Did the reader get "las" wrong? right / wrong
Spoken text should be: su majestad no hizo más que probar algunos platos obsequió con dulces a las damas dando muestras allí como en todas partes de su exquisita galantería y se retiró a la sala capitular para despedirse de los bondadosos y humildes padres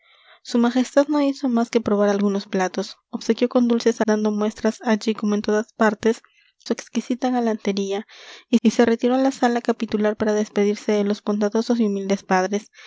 wrong